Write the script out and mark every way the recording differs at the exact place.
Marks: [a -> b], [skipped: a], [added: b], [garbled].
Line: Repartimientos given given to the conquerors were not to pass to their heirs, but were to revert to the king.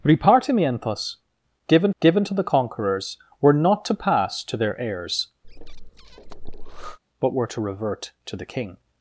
Repartimientos given given to the conquerors were not to pass to their heirs, but were to revert to the king.